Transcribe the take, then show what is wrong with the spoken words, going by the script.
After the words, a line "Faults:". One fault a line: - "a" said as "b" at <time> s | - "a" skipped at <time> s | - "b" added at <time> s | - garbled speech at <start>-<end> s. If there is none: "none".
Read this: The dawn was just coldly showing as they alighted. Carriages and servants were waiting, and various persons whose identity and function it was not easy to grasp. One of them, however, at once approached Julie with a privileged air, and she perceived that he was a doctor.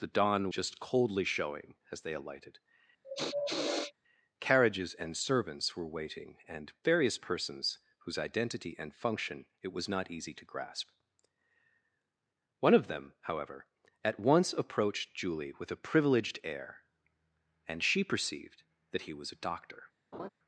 The dawn just coldly showing as they alighted. Carriages and servants were waiting, and various persons whose identity and function it was not easy to grasp. One of them, however, at once approached Julie with a privileged air, and she perceived that he was a doctor.
Faults:
- "was" skipped at 0.5 s